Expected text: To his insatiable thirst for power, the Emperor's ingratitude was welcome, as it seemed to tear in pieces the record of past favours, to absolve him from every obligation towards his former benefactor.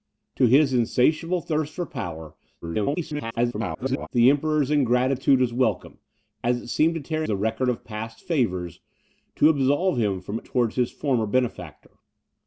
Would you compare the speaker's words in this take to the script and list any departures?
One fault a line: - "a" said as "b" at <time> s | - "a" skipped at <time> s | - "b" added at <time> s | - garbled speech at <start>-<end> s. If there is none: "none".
- garbled speech at 2.6-4.1 s
- "in pieces" skipped at 7.2 s
- "every obligation" skipped at 10.4 s